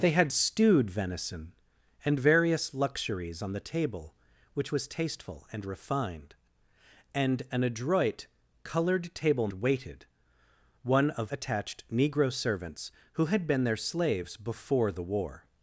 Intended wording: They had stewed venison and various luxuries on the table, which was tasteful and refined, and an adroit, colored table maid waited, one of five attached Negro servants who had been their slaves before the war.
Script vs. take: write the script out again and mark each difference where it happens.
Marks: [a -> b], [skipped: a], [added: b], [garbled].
They had stewed venison and various luxuries on the table, which was tasteful and refined, and an adroit, colored table [skipped: maid] waited, one of [skipped: five] attached Negro servants who had been their slaves before the war.